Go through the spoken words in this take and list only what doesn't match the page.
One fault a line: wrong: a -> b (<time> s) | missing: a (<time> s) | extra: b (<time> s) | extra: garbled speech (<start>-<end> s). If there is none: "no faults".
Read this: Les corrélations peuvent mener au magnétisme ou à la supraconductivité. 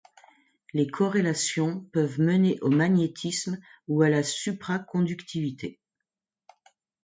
no faults